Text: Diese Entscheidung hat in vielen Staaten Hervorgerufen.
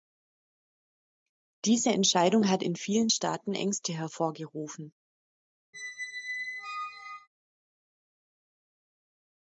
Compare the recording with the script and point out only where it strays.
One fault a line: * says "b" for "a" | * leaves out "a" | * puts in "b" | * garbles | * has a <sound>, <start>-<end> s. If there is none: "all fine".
* puts in "Ängste"
* has a squeak, 5.7-7.3 s